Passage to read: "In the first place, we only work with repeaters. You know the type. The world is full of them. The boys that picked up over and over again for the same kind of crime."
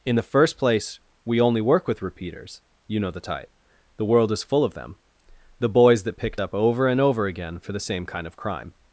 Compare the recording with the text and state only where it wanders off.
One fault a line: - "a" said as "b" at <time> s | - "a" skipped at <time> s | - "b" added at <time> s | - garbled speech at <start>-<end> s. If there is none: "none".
none